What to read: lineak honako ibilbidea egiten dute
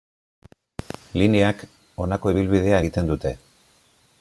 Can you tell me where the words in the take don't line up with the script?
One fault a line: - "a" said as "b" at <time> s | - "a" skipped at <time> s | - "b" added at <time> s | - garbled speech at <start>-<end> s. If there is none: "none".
none